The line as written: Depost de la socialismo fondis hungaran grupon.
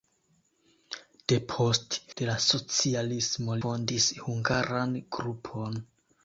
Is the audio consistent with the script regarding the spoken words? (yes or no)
yes